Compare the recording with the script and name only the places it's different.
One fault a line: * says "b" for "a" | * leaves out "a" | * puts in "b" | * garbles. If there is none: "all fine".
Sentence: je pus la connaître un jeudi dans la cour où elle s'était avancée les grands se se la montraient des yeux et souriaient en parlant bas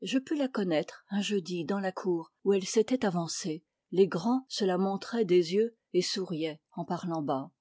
* leaves out "se"